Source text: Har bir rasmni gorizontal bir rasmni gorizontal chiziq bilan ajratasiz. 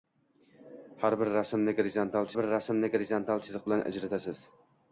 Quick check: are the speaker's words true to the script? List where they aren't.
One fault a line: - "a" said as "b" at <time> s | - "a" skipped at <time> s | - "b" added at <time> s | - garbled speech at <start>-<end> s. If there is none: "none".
none